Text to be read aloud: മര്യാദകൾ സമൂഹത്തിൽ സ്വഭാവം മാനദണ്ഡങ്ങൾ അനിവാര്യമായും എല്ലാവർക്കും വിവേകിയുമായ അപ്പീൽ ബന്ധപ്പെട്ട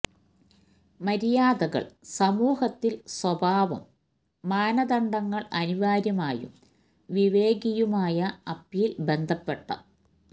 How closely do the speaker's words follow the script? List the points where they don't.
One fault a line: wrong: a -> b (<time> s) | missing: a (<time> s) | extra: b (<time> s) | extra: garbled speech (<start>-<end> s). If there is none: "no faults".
missing: എല്ലാവർക്കും (6.5 s)